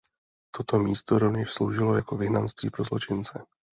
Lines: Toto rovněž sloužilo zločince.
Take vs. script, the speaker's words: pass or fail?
fail